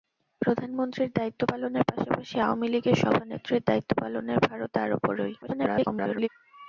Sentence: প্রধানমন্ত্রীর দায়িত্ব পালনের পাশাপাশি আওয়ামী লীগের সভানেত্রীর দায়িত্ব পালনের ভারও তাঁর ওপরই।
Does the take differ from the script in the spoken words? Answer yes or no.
yes